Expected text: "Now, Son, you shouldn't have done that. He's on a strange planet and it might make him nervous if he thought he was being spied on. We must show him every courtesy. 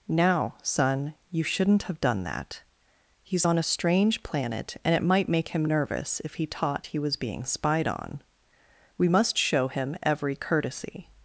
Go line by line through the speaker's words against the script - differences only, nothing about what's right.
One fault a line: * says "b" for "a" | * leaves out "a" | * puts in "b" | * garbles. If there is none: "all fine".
* says "taught" for "thought"